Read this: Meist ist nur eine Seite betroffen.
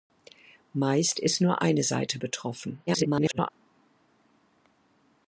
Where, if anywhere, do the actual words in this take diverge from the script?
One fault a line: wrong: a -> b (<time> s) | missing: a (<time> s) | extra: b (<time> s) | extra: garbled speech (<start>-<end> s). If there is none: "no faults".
extra: garbled speech (2.9-3.5 s)